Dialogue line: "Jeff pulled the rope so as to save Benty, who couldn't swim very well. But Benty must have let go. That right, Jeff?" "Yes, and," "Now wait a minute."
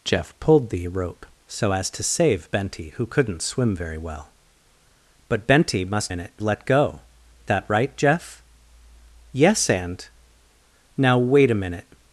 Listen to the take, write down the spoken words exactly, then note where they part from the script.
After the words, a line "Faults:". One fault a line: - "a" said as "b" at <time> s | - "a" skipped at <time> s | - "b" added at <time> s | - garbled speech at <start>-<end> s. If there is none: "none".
"Jeff pulled the rope so as to save Benty, who couldn't swim very well. But Benty must minute let go. That right, Jeff?" "Yes, and," "Now wait a minute."
Faults:
- "have" said as "minute" at 6.1 s